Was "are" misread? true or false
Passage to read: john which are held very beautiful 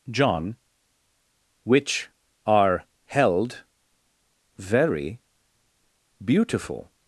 false